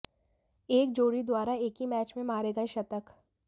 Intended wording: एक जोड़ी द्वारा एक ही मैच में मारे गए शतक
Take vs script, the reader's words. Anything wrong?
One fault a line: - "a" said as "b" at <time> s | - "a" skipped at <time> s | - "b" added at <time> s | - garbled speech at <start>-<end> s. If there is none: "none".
none